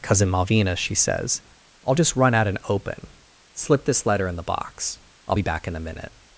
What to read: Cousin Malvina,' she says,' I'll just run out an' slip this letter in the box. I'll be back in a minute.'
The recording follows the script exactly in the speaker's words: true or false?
false